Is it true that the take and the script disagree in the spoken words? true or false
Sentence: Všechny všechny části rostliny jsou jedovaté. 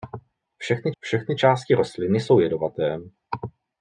false